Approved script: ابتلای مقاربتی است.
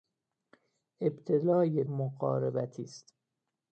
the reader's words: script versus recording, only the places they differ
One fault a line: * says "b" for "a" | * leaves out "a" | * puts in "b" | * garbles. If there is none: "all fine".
all fine